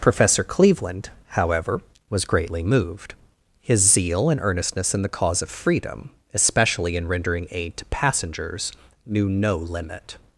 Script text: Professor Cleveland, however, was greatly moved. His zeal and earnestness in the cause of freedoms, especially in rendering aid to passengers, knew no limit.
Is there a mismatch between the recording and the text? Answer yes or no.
yes